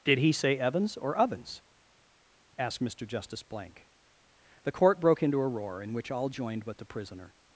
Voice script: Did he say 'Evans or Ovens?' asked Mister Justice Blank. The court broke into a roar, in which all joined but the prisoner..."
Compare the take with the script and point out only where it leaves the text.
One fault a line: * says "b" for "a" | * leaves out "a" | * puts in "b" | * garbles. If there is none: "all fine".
all fine